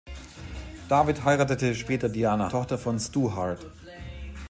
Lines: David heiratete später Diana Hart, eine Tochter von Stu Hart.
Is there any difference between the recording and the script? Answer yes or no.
yes